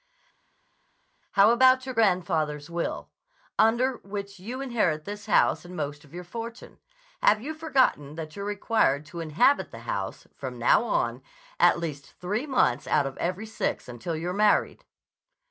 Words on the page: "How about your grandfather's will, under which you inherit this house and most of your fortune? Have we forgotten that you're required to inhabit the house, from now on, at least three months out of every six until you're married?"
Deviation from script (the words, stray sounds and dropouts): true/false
true